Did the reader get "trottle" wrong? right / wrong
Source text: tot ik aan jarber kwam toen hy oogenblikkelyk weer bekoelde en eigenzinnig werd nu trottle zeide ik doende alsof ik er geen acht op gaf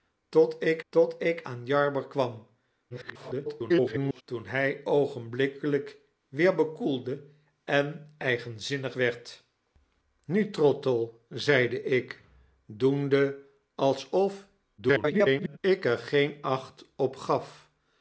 right